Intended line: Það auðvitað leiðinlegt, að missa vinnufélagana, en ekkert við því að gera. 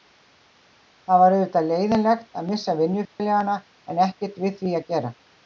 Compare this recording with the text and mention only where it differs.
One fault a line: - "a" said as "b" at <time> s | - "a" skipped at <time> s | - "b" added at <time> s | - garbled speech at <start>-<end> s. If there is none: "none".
- "var" added at 1.2 s